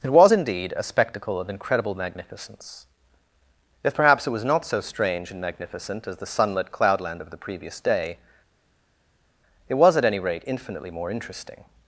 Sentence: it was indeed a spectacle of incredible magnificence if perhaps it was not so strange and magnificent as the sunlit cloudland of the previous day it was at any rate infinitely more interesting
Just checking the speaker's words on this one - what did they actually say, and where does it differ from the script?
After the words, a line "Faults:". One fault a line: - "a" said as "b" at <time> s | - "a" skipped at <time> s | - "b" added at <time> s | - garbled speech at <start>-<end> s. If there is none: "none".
it was indeed a spectacle of incredible magnificence if perhaps it was not so strange and magnificent as the sunlit cloudland of the previous day it was at any rate infinitely more interesting
Faults:
none